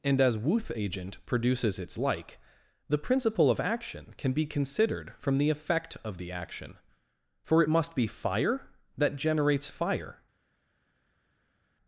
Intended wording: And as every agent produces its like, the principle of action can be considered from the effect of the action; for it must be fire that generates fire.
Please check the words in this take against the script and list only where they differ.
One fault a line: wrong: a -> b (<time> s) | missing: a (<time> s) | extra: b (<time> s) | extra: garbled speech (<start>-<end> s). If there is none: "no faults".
wrong: every -> wuth (0.4 s)